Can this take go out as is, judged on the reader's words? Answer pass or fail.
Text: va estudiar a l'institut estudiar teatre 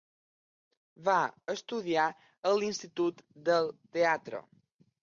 fail